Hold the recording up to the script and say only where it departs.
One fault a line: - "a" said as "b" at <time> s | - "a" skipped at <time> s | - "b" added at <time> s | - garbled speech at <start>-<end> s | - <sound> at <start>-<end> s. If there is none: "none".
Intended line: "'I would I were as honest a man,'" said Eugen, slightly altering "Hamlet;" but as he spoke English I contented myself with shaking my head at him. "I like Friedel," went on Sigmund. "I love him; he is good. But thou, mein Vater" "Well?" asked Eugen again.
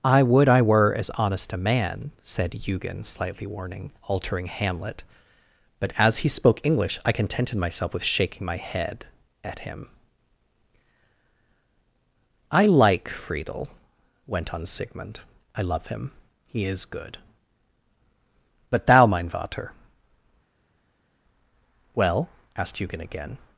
- "warning" added at 3.5 s